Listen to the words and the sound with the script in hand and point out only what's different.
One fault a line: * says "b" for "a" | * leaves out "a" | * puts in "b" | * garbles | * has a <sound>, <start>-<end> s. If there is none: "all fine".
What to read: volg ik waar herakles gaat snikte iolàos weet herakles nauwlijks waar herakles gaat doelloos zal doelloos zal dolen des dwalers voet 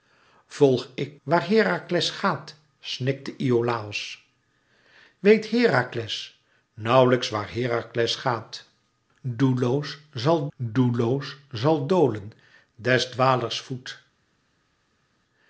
all fine